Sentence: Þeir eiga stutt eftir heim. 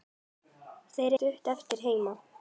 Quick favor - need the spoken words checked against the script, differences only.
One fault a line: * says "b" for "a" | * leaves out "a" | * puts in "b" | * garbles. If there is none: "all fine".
* leaves out "eiga"